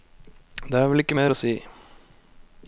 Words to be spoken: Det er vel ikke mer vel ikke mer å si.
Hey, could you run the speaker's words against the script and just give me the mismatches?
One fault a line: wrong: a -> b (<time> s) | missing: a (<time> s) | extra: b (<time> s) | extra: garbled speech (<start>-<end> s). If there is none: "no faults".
missing: vel ikke mer (1.3 s)